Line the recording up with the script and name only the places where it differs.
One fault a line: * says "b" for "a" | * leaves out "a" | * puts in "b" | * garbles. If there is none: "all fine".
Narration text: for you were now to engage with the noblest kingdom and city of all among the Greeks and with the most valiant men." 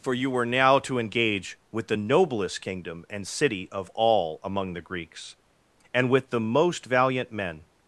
all fine